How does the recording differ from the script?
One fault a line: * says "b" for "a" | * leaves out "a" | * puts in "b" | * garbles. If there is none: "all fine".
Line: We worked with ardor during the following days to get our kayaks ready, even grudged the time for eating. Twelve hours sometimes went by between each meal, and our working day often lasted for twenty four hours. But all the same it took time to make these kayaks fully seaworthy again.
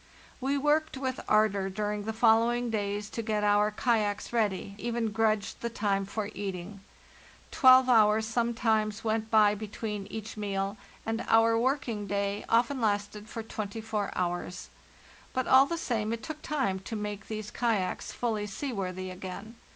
all fine